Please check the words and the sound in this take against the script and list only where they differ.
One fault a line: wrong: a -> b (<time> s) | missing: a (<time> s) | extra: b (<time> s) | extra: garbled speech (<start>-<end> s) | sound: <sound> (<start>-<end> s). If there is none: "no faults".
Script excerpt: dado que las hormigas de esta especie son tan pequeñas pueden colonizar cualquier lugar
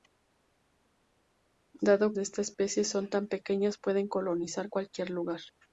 missing: que las hormigas (2.1 s)